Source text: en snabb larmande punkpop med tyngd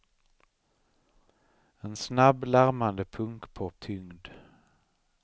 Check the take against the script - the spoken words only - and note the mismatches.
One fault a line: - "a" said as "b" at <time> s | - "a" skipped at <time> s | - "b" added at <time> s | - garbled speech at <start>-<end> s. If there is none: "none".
- "med" skipped at 3.8 s